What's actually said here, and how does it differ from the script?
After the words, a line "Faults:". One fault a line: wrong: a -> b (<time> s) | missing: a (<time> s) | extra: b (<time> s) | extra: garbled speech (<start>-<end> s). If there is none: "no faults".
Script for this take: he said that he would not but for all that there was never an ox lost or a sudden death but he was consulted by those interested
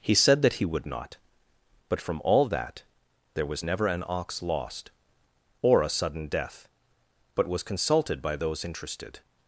he said that he would not but from all that there was never an ox lost or a sudden death but was consulted by those interested
Faults:
wrong: for -> from (2.0 s)
missing: he (7.5 s)